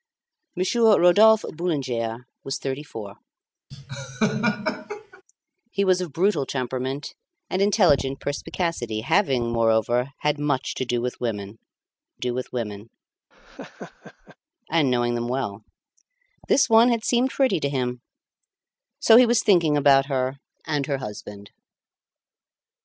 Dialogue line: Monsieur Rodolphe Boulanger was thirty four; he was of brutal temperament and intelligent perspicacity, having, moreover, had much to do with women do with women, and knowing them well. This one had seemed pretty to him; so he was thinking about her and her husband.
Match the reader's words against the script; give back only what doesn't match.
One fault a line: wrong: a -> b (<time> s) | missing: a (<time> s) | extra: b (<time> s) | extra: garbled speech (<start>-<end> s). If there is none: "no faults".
no faults